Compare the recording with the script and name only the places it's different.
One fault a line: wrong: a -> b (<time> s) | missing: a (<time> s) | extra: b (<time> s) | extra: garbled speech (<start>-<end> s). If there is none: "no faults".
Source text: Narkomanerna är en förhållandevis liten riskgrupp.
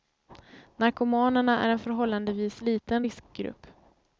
no faults